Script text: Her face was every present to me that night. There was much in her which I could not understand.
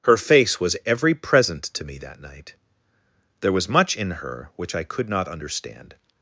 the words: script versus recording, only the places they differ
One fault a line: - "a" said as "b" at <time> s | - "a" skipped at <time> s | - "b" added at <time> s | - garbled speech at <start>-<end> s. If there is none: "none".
none